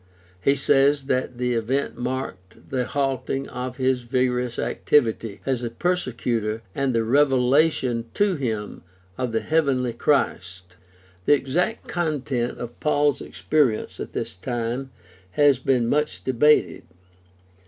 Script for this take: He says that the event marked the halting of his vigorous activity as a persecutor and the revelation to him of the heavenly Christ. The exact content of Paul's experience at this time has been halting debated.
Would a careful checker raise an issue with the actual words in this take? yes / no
yes